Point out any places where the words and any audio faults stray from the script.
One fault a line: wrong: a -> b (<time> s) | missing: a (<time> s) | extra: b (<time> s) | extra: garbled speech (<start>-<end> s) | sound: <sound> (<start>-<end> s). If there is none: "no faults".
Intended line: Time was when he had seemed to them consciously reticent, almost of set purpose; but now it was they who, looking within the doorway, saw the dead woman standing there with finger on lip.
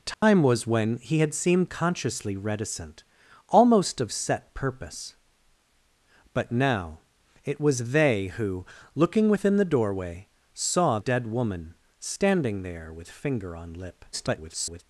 sound: dropout (0.1-0.2 s)
missing: to them (1.7 s)
missing: the (11.0 s)
extra: garbled speech (14.1-14.8 s)